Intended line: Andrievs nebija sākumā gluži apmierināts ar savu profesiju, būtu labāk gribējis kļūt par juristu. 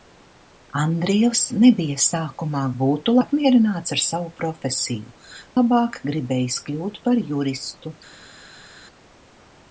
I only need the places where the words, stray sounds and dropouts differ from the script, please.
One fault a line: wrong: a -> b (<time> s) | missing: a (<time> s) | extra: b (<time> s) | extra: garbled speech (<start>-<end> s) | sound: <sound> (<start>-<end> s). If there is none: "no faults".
wrong: gluži -> būtu (2.8 s)
missing: būtu (5.2 s)